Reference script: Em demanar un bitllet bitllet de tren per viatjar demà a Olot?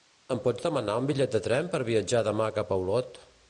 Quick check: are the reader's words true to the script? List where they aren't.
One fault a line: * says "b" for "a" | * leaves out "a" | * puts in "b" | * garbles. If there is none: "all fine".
* puts in "pots"
* leaves out "bitllet"
* puts in "cap"